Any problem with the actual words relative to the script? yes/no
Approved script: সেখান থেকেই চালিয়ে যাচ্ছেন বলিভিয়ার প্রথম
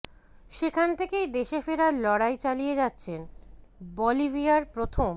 yes